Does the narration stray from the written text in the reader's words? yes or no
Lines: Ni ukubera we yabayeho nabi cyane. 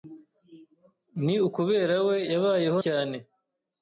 yes